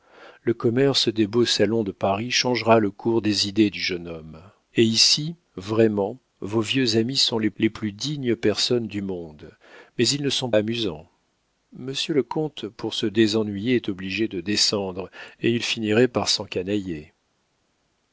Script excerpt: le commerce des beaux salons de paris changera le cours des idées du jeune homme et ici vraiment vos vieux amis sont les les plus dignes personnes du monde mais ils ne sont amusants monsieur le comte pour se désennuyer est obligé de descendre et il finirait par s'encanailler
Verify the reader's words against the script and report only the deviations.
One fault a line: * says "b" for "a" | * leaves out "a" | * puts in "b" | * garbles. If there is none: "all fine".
all fine